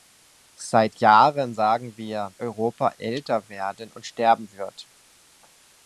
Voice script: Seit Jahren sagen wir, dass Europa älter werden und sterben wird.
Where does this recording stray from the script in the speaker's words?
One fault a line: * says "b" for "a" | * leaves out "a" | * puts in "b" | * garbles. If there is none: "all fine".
* leaves out "dass"